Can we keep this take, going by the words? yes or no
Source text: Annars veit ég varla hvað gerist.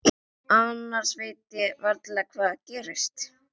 yes